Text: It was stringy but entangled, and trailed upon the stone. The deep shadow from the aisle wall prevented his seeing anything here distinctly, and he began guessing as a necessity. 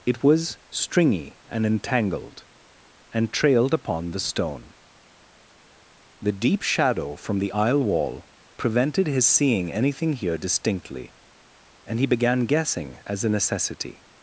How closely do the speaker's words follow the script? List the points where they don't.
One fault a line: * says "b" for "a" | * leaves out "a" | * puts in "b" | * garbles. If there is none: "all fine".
* says "and" for "but"